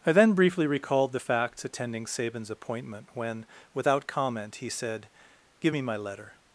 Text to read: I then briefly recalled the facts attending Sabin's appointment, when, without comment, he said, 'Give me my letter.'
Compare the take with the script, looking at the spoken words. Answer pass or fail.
pass